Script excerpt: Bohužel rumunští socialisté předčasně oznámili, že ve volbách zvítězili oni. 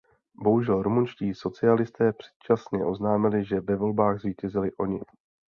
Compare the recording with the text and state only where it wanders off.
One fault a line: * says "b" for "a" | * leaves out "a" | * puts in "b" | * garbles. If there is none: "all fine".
all fine